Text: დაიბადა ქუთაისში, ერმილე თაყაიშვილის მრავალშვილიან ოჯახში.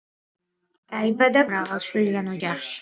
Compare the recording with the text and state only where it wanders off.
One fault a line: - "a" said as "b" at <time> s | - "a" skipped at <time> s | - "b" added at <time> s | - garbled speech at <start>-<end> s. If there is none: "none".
- "ქუთაისში ერმილე თაყაიშვილის" skipped at 1.4 s